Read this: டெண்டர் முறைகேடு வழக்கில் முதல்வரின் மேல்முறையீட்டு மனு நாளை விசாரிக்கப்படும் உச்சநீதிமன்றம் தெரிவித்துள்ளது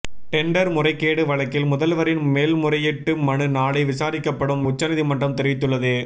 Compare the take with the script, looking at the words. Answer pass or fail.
pass